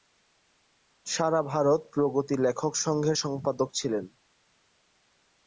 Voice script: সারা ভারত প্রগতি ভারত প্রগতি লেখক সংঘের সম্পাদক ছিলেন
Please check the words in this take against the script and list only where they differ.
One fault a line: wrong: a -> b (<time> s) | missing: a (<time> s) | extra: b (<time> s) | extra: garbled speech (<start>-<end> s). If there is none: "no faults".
missing: ভারত প্রগতি (2.4 s)